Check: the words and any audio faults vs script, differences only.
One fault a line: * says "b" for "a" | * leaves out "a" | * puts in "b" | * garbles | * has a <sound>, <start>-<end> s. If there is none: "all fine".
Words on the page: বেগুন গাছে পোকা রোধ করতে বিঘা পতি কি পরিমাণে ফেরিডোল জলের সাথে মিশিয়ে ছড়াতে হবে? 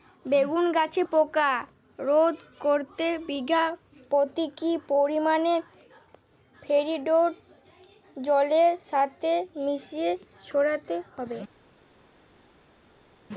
all fine